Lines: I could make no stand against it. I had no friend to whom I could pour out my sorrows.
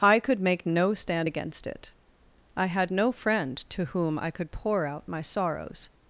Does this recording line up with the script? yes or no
yes